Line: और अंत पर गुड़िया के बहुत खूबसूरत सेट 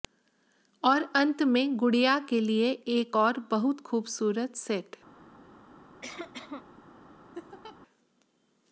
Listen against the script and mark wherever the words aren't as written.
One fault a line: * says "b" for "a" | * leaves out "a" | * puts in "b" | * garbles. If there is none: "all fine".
* says "में" for "पर"
* puts in "लिए एक और"